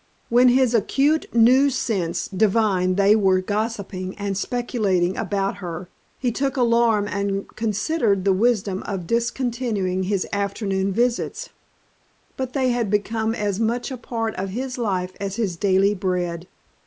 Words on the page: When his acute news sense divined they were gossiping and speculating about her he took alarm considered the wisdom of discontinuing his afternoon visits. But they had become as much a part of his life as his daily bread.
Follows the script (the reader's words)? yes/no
no